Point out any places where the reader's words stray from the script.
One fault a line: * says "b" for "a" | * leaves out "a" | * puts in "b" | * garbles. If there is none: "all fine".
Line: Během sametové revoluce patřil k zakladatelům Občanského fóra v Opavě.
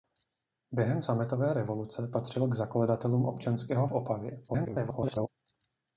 * leaves out "fóra"
* garbles